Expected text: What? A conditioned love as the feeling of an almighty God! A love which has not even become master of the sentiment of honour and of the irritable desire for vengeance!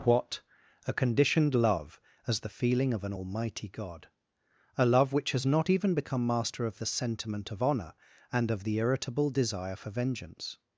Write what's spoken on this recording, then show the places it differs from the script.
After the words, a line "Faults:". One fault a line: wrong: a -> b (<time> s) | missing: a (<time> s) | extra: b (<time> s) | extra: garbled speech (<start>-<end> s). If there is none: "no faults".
What? A conditioned love as the feeling of an almighty God! A love which has not even become master of the sentiment of honour and of the irritable desire for vengeance!
Faults:
no faults